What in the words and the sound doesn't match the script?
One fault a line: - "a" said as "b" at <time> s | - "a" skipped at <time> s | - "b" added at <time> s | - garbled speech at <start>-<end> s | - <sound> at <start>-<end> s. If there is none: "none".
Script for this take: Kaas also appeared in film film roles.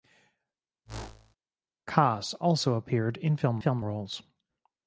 - whoosh at 0.9-1.4 s